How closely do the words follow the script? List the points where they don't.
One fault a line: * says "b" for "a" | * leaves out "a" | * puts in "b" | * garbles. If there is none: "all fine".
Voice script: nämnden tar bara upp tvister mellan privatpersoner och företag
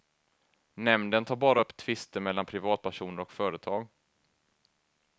all fine